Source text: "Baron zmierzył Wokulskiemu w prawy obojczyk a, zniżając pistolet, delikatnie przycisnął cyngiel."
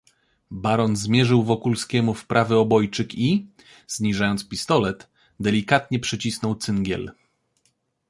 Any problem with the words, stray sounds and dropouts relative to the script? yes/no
yes